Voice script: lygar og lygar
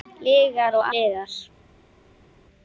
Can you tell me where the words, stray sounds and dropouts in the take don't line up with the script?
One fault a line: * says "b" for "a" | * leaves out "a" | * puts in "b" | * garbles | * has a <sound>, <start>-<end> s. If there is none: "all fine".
all fine